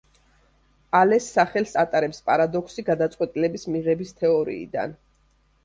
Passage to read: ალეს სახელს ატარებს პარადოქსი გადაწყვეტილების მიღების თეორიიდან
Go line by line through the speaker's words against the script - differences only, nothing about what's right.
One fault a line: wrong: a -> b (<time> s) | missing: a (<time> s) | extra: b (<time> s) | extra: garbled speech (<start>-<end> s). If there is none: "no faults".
no faults